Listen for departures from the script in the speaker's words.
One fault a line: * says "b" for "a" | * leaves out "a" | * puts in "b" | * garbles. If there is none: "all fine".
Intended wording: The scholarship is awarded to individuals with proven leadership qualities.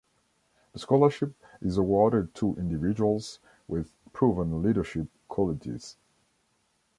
all fine